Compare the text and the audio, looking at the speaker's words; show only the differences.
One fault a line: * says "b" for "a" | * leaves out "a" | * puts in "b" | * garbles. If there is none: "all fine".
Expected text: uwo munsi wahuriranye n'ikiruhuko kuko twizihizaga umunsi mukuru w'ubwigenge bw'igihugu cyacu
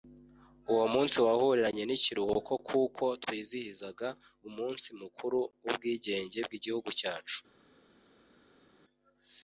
all fine